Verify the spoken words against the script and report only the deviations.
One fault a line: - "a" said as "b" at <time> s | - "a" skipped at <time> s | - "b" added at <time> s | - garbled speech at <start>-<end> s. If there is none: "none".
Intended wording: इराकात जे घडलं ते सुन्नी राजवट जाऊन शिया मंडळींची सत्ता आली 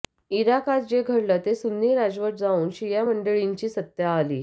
none